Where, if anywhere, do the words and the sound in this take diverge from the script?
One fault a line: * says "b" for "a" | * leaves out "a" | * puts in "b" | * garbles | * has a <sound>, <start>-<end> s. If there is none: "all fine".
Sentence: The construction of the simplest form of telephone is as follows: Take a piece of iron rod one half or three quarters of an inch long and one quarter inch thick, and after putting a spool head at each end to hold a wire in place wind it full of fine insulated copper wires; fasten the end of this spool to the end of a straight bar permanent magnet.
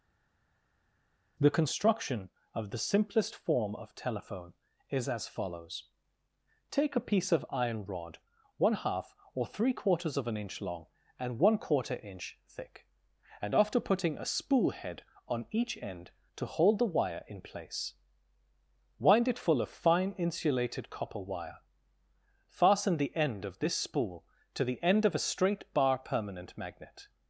* says "on" for "at"
* says "the" for "a"
* says "wire" for "wires"